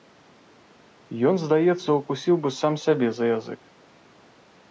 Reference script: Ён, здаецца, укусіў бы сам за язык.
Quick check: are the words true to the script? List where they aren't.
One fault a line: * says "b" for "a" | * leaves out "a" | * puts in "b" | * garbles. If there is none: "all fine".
* puts in "сябе"